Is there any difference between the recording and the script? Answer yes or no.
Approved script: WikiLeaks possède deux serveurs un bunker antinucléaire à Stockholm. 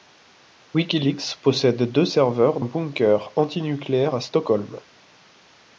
no